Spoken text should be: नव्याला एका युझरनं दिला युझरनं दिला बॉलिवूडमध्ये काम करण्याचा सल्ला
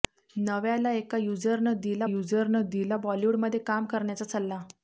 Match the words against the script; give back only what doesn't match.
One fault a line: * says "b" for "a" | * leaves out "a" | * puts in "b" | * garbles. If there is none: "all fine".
all fine